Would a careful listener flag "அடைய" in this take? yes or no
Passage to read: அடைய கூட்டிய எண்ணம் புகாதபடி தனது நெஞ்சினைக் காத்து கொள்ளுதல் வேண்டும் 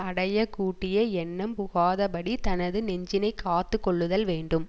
no